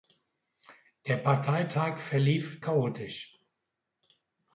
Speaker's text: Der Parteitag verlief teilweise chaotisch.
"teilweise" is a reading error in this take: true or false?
true